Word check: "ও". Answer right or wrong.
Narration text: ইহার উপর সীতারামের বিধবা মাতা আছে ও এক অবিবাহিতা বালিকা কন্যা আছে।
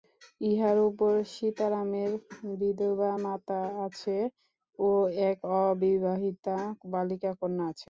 right